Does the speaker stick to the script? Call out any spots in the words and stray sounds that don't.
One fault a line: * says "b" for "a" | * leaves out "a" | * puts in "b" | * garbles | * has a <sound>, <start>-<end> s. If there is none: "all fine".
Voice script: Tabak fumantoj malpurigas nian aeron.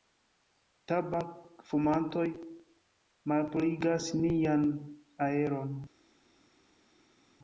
all fine